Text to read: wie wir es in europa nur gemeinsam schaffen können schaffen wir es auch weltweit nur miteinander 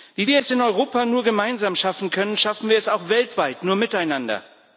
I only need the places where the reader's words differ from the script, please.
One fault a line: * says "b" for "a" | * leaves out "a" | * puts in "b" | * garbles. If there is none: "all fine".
all fine